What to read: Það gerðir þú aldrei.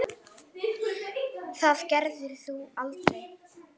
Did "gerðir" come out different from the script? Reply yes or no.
no